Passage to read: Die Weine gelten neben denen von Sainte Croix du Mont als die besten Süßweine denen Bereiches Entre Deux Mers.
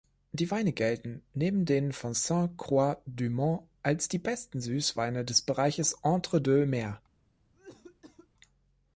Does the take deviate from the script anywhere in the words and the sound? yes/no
yes